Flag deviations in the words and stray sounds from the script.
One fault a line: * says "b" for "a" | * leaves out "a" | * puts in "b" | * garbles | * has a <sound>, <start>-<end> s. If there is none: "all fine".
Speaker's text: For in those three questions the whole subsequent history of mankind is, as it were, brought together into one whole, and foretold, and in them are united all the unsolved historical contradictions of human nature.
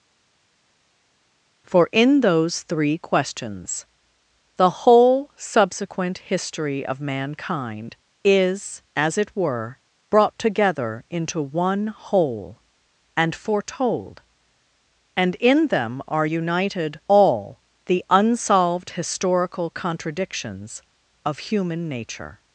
all fine